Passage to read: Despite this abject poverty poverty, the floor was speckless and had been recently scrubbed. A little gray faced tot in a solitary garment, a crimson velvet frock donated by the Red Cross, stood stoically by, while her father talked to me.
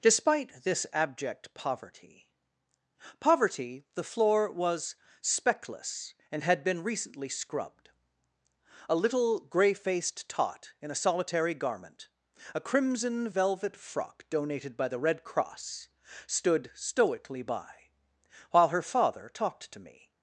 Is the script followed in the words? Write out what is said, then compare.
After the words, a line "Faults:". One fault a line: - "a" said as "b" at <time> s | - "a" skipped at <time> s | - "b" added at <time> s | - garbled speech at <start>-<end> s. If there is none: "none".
Despite this abject poverty poverty, the floor was speckless and had been recently scrubbed. A little gray faced tot in a solitary garment, a crimson velvet frock donated by the Red Cross, stood stoically by, while her father talked to me.
Faults:
none